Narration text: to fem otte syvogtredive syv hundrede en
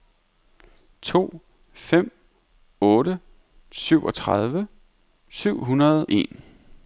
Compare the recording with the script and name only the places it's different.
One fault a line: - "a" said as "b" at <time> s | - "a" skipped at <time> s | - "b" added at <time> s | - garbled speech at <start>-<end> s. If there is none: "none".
none